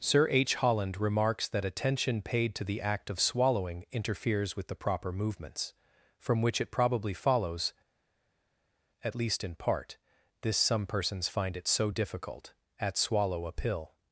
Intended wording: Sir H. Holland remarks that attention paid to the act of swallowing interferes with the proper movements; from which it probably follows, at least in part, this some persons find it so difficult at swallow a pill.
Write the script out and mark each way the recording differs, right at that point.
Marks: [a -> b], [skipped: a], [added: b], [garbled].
Sir H. Holland remarks that attention paid to the act of swallowing interferes with the proper movements; from which it probably follows, at least in part, this some persons find it so difficult at swallow a pill.